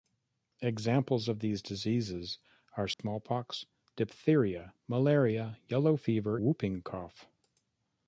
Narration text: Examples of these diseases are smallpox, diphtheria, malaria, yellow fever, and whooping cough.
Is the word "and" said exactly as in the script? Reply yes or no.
no